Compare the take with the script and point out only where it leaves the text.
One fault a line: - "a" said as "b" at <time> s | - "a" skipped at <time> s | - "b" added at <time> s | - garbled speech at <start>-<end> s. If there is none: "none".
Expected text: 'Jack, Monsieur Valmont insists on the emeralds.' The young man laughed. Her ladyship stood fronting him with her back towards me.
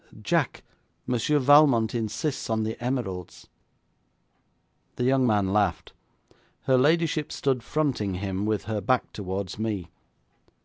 none